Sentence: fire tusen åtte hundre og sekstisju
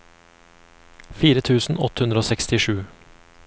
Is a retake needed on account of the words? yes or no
no